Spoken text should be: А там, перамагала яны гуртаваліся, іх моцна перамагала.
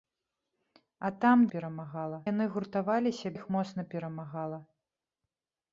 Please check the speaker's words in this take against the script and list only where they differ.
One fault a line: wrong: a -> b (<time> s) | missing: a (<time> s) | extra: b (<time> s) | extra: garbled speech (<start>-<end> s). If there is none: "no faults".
no faults